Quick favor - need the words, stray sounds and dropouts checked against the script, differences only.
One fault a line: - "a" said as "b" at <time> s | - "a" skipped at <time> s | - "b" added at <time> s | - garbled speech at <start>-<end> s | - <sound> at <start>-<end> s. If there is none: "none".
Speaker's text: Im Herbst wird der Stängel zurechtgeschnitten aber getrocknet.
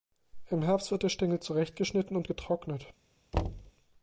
- "aber" said as "und" at 2.2 s
- thud at 3.3-3.7 s